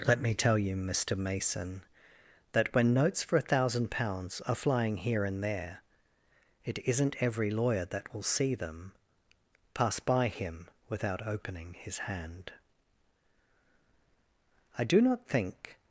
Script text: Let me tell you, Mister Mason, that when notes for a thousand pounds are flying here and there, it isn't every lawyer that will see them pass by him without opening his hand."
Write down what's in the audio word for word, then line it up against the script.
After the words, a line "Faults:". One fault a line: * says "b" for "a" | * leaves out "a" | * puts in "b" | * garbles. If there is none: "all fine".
Let me tell you, Mister Mason, that when notes for a thousand pounds are flying here and there, it isn't every lawyer that will see them pass by him without opening his hand." "I do not think
Faults:
* puts in "I do not think"